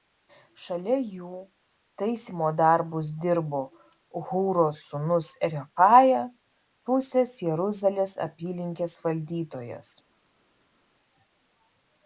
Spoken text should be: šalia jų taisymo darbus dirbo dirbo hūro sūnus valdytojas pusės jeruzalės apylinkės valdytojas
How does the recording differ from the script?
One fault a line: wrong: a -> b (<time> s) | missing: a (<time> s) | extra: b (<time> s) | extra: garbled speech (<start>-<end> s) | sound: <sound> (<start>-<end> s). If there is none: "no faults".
missing: dirbo (3.6 s)
wrong: valdytojas -> refaja (5.5 s)